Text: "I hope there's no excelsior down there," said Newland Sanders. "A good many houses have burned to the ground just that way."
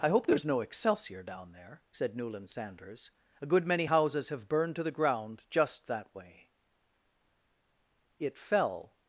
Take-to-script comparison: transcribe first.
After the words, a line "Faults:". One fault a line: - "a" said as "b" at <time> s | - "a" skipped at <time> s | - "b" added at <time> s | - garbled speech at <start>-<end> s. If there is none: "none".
"I hope there's no excelsior down there," said Newland Sanders. "A good many houses have burned to the ground just that way." "It fell
Faults:
- "It fell" added at 8.2 s